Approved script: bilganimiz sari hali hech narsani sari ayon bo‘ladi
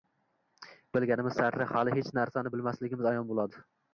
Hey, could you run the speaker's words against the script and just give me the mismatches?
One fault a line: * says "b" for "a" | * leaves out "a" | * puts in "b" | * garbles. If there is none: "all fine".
* says "bilmasligimiz" for "sari"